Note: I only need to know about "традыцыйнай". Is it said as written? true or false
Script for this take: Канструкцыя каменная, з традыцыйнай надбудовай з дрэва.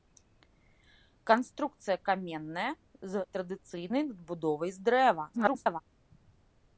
true